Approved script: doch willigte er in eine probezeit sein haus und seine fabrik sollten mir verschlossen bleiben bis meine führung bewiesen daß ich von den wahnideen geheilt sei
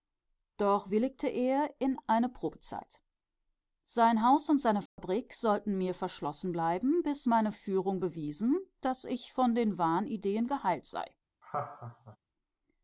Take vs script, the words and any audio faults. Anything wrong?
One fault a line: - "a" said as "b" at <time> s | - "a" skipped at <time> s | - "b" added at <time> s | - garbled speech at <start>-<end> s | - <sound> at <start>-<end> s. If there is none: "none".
- dropout at 4.9-5.0 s
- laugh at 11.4-12.2 s